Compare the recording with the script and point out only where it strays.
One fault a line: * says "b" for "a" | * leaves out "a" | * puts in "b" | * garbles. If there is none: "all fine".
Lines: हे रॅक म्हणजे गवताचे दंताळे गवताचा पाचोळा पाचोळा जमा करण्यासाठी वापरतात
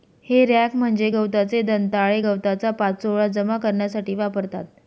* leaves out "पाचोळा"